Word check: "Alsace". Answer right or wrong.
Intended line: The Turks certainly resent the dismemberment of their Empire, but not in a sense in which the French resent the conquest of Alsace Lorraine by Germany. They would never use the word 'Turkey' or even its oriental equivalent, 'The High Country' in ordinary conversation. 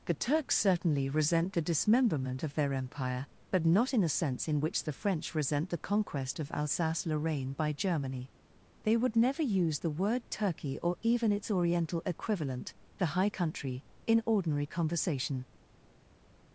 right